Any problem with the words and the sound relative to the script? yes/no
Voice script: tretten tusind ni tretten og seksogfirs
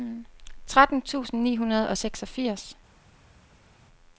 yes